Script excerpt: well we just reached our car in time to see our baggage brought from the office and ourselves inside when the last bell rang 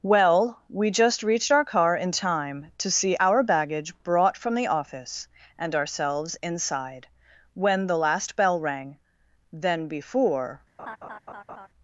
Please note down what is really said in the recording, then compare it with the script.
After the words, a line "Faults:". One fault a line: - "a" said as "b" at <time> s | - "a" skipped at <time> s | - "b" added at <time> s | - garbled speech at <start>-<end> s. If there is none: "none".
well we just reached our car in time to see our baggage brought from the office and ourselves inside when the last bell rang then before
Faults:
- "then before" added at 9.5 s